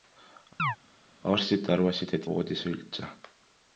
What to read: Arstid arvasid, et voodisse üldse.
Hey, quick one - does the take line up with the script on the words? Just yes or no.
yes